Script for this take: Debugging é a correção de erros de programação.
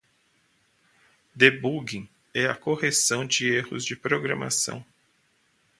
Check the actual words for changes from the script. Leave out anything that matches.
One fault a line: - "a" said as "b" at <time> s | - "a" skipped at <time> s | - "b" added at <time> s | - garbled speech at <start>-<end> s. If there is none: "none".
none